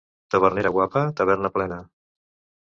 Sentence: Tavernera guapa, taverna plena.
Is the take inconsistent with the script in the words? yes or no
no